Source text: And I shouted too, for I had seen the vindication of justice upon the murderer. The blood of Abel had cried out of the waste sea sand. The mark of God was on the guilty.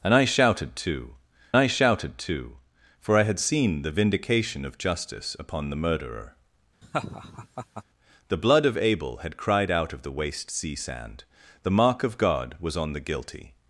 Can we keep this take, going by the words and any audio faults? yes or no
no